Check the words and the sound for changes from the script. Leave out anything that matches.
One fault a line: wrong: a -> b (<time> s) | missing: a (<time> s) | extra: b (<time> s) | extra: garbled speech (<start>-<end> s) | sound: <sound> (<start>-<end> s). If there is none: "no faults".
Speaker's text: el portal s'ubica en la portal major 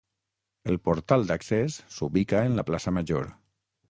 extra: d'accés (1.3 s)
wrong: portal -> plaça (2.7 s)